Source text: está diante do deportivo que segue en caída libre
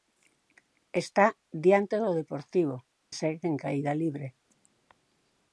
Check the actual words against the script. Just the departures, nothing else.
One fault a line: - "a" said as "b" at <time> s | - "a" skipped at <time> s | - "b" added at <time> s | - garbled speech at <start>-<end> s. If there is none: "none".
- "que" skipped at 2.8 s